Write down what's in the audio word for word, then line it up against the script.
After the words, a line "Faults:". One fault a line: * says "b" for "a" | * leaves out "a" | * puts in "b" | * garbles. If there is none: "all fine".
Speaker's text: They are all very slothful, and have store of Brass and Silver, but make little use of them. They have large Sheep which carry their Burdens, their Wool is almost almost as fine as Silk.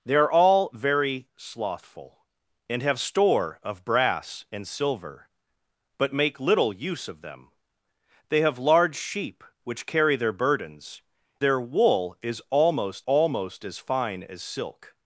They are all very slothful, and have store of Brass and Silver, but make little use of them. They have large Sheep which carry their Burdens, their Wool is almost almost as fine as Silk.
Faults:
all fine